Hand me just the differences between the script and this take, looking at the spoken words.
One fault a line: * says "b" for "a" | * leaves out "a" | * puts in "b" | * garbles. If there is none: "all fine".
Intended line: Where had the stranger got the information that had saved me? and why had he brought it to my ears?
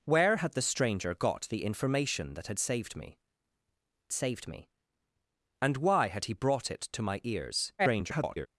* puts in "saved me"
* garbles